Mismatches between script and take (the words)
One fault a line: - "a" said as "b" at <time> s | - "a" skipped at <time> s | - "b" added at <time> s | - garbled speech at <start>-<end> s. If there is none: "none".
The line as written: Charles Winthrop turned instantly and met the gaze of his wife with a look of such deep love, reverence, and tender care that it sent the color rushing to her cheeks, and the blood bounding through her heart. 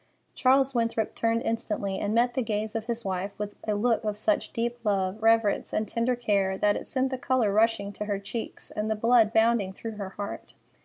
none